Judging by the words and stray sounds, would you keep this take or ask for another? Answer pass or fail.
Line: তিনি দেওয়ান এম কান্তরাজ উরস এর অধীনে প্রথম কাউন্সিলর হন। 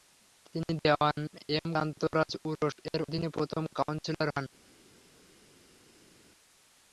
pass